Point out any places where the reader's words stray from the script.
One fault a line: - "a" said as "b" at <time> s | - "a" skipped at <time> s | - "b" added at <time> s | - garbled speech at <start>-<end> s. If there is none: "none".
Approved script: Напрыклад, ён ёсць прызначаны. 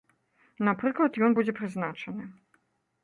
- "ёсць" said as "будзе" at 1.4 s